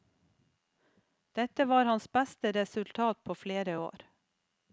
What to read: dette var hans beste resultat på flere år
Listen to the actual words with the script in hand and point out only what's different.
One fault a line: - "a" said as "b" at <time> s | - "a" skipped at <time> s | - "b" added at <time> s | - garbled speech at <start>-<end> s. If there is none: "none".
none